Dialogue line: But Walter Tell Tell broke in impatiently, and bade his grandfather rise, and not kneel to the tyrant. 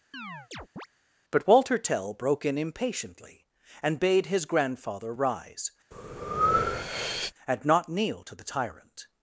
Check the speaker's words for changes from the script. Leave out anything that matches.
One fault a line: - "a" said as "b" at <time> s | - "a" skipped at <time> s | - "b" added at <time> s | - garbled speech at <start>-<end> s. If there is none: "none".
- "Tell" skipped at 2.1 s